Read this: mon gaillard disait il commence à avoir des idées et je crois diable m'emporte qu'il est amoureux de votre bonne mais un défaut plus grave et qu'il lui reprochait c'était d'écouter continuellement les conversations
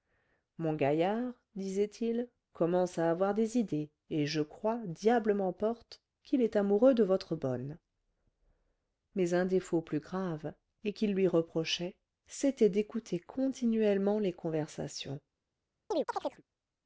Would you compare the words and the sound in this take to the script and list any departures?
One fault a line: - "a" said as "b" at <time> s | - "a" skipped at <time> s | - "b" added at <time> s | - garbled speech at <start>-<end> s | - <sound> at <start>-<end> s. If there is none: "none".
- chirp at 15.9-16.4 s